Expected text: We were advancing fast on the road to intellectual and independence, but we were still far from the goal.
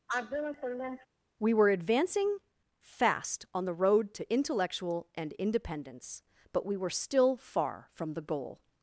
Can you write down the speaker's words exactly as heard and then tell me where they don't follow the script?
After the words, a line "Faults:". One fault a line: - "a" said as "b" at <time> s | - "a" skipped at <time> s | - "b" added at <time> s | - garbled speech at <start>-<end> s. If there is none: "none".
We were advancing fast on the road to intellectual and independence, but we were still far from the goal.
Faults:
none